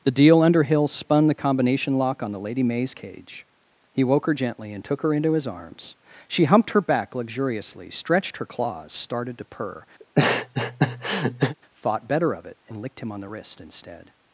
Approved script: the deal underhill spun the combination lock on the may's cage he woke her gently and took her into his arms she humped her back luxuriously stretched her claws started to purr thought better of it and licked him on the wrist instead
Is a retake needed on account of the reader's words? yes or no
yes